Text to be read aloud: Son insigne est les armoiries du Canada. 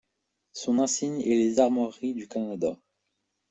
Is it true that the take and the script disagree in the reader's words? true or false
false